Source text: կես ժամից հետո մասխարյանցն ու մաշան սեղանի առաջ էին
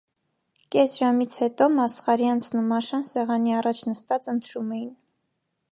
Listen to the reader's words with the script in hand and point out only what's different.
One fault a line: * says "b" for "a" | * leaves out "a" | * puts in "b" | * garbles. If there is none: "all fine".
* puts in "նստած ընթրում"